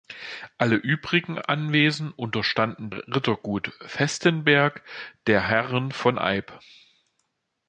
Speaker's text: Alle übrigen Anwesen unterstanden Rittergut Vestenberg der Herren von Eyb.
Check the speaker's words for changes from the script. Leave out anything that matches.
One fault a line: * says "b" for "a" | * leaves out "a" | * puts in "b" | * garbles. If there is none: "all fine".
all fine